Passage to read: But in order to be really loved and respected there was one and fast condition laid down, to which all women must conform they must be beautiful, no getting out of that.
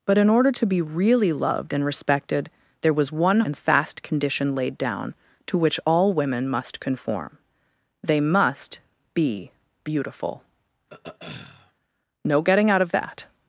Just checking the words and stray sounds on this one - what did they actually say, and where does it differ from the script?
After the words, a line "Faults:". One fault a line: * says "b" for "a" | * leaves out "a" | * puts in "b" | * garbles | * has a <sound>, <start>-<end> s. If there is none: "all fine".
But in order to be really loved and respected there was one and fast condition laid down, to which all women must conform they must be beautiful, no getting out of that.
Faults:
* has a throat clearing, 10.9-11.7 s